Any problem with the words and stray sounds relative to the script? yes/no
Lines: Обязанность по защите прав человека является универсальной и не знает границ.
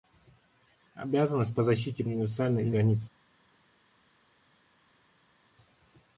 yes